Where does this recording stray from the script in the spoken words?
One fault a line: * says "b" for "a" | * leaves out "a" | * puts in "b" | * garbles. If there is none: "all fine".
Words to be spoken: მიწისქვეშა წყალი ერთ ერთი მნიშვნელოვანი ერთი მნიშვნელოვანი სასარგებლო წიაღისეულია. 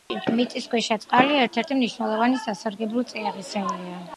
* leaves out "ერთი მნიშვნელოვანი"